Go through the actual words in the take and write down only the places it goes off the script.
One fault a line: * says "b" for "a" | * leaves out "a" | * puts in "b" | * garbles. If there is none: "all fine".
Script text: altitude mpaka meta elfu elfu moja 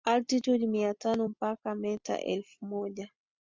* puts in "mia tano"
* leaves out "elfu"